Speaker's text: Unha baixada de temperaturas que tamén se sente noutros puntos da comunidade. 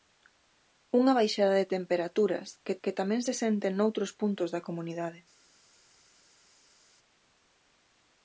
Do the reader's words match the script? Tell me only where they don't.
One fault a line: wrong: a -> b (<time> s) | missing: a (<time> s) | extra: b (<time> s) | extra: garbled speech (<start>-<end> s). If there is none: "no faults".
extra: que (2.8 s)